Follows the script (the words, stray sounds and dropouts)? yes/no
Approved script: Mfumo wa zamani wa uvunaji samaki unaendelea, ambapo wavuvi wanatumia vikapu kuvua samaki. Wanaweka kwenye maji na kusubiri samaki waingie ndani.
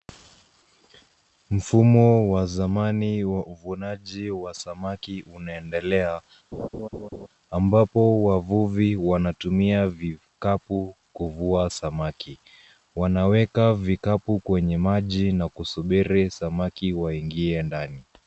no